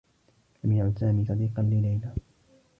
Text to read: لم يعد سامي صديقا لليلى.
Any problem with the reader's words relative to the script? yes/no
no